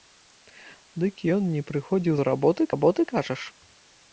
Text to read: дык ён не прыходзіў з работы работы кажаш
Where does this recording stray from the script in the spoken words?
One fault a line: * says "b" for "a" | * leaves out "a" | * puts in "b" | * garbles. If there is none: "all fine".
all fine